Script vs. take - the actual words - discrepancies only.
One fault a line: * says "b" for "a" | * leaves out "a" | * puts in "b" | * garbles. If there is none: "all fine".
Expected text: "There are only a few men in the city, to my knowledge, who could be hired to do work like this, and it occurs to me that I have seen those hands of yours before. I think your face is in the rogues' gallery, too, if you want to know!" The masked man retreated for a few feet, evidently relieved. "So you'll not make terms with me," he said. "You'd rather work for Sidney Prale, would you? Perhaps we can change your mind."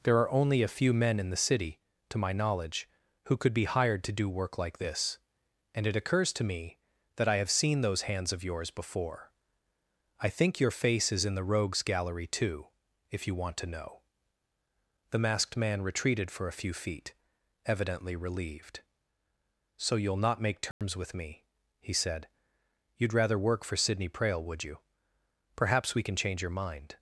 all fine